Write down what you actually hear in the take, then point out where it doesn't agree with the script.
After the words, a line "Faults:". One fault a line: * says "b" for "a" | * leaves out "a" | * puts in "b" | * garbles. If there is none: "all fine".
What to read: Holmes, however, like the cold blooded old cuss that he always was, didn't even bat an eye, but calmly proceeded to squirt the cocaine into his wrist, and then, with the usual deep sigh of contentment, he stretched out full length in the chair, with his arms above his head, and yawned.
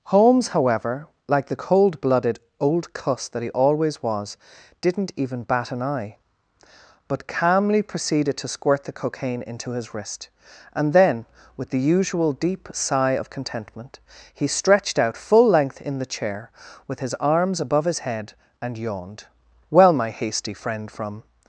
Holmes, however, like the cold blooded old cuss that he always was, didn't even bat an eye, but calmly proceeded to squirt the cocaine into his wrist, and then, with the usual deep sigh of contentment, he stretched out full length in the chair, with his arms above his head, and yawned. "Well, my hasty friend from
Faults:
* puts in "Well my hasty friend from"